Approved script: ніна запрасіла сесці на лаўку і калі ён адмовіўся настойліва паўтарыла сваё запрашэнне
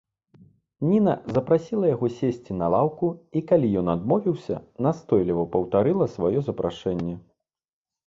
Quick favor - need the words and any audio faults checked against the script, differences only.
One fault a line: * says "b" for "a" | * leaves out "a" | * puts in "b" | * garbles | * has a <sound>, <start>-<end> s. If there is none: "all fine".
* puts in "яго"